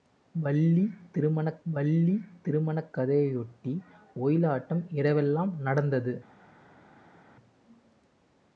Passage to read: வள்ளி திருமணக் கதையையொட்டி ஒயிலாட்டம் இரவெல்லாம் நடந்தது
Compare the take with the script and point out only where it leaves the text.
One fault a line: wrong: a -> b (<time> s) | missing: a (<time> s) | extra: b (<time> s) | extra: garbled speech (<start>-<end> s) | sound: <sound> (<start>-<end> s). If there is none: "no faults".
extra: வள்ளி திருமணக் (1.7 s)